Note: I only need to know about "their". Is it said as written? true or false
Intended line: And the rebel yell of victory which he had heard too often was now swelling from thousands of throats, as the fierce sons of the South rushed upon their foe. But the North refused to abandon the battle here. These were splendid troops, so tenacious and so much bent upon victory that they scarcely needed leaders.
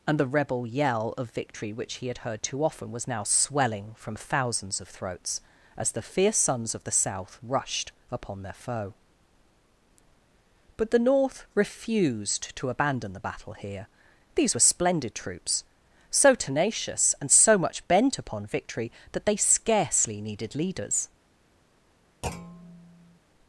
true